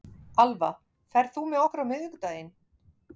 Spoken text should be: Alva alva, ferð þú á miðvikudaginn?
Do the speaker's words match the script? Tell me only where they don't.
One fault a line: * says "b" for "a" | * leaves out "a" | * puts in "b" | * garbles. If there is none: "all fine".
* leaves out "alva"
* puts in "með okkur"